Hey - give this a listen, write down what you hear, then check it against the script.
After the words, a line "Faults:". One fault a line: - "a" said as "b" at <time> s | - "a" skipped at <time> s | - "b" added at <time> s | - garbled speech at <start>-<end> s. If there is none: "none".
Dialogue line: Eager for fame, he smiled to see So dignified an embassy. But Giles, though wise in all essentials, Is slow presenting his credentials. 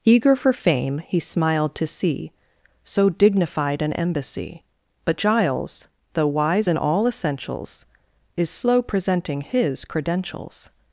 Eager for fame, he smiled to see So dignified an embassy. But Giles, though wise in all essentials, Is slow presenting his credentials.
Faults:
none